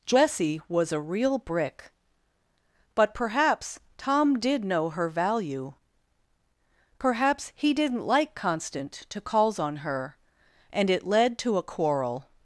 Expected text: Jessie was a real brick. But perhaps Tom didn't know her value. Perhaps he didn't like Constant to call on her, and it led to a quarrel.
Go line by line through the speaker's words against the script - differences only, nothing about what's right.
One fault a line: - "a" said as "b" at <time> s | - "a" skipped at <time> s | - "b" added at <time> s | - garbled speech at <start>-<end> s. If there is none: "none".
- "didn't" said as "did" at 4.4 s
- "call" said as "calls" at 9.2 s